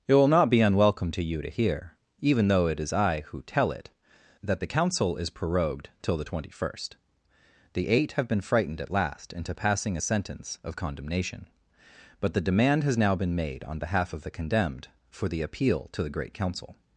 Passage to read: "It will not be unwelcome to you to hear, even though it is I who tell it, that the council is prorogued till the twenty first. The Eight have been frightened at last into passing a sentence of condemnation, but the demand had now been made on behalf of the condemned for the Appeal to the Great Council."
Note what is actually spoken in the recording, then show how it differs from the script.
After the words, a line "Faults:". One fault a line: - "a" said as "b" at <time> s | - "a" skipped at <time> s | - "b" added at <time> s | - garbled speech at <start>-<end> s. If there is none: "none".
"It will not be unwelcome to you to hear, even though it is I who tell it, that the council is prorogued till the twenty first. The Eight have been frightened at last into passing a sentence of condemnation, but the demand has now been made on behalf of the condemned for the Appeal to the Great Council."
Faults:
- "had" said as "has" at 12.8 s